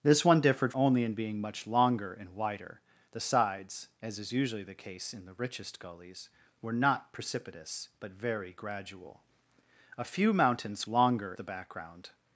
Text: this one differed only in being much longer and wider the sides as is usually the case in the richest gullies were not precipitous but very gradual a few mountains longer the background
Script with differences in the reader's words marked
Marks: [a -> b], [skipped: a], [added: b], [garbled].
this one differed only in being much longer and wider the sides as is usually the case in the richest gullies were not precipitous but very gradual a few mountains longer the background